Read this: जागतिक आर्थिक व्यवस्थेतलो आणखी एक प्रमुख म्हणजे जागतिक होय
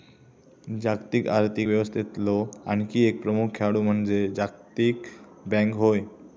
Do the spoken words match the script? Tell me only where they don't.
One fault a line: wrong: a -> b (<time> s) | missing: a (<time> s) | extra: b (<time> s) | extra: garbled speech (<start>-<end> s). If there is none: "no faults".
extra: खेळाडू (3.5 s)
extra: बँक (5.5 s)